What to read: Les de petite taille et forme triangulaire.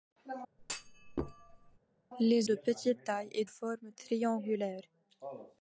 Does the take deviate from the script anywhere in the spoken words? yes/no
no